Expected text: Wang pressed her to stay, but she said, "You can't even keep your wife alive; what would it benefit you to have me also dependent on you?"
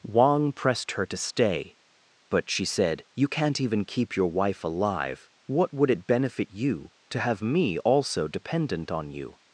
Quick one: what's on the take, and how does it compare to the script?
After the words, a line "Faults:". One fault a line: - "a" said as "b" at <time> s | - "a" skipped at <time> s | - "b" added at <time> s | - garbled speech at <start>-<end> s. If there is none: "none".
Wang pressed her to stay, but she said, "You can't even keep your wife alive; what would it benefit you to have me also dependent on you?"
Faults:
none